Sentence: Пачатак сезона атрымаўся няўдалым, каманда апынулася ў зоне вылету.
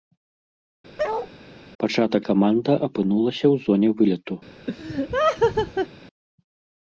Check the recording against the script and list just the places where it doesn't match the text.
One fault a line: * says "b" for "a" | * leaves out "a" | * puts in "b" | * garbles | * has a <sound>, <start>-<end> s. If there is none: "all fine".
* has a bark, 1.0-1.3 s
* leaves out "сезона атрымаўся няўдалым"
* has a laugh, 4.7-5.9 s